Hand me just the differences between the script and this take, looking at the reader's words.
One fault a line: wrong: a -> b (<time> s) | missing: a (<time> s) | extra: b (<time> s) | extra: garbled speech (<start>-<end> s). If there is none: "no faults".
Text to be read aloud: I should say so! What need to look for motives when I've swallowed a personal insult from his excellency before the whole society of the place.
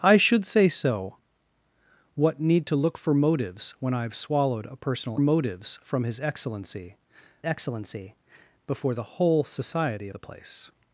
wrong: insult -> motives (5.2 s)
extra: excellency (7.4 s)
missing: of (10.1 s)